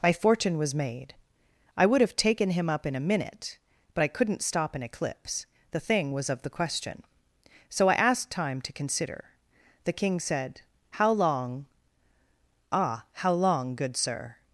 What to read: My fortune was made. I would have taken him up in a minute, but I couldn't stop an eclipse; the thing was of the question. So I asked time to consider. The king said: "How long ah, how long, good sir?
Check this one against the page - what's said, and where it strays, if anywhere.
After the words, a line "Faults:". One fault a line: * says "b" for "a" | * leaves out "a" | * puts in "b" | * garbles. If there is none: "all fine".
My fortune was made. I would have taken him up in a minute, but I couldn't stop an eclipse; the thing was of the question. So I asked time to consider. The king said: "How long ah, how long, good sir?
Faults:
all fine